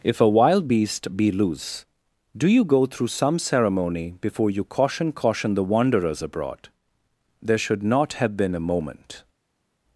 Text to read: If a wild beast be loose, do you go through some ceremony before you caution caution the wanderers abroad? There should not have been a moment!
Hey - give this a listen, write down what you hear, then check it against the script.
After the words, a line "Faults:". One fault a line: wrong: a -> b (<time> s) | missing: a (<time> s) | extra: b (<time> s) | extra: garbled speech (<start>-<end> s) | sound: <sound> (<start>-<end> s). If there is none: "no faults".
If a wild beast be loose, do you go through some ceremony before you caution caution the wanderers abroad? There should not have been a moment!
Faults:
no faults